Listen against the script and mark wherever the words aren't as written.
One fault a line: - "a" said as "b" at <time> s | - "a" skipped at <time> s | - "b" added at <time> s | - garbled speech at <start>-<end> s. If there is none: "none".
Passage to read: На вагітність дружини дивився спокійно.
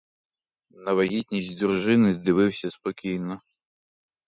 none